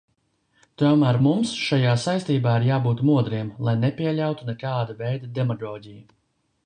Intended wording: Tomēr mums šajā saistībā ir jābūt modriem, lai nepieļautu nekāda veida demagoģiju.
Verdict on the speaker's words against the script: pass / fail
pass